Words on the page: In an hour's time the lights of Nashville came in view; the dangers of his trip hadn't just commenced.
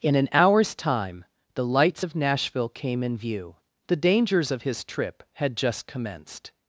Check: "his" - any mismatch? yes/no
no